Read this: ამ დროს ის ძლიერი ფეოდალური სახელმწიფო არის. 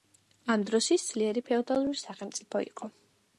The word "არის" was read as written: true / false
false